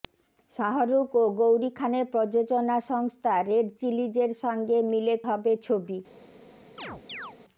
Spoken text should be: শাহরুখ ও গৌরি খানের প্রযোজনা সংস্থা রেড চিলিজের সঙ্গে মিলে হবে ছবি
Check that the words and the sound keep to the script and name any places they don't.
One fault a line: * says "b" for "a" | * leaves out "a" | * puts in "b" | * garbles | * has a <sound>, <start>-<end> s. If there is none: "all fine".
* has a chirp, 6.8-7.4 s